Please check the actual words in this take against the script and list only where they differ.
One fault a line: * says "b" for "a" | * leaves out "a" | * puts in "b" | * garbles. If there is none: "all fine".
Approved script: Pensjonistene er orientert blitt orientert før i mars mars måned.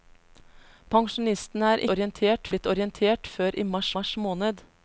all fine